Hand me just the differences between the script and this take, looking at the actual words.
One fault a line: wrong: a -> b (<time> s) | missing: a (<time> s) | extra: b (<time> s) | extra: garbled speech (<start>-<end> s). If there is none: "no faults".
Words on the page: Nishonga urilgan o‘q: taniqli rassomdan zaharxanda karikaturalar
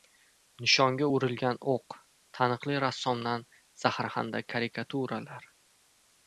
no faults